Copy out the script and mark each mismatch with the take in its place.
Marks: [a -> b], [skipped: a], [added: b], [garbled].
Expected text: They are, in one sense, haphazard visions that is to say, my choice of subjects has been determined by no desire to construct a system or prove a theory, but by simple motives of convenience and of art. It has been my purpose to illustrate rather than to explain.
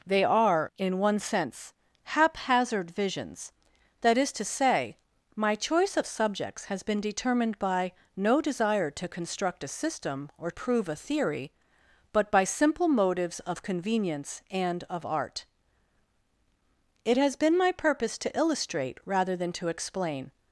They are, in one sense, haphazard visions that is to say, my choice of subjects has been determined by no desire to construct a system or prove a theory, but by simple motives of convenience and of art. It has been my purpose to illustrate rather than to explain.